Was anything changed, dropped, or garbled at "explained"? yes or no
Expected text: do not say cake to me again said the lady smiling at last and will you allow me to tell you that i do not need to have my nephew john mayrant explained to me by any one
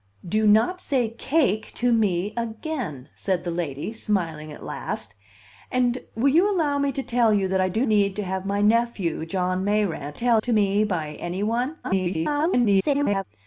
yes